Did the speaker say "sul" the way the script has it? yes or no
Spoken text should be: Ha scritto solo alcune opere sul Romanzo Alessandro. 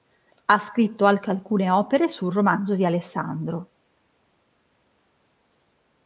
yes